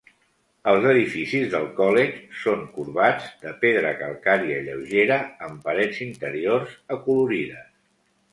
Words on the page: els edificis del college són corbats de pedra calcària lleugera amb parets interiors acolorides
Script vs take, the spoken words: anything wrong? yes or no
no